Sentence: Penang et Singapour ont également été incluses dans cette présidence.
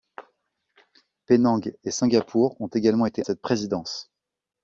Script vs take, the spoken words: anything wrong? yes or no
yes